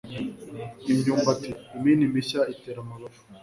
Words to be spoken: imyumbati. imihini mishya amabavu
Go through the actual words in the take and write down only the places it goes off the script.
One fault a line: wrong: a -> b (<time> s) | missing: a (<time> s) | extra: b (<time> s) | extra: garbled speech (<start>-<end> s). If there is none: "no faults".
extra: itera (2.5 s)